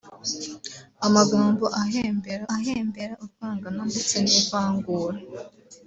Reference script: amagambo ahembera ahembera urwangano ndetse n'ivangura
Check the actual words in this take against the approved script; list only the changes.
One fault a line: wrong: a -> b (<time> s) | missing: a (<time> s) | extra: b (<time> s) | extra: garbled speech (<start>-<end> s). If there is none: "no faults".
no faults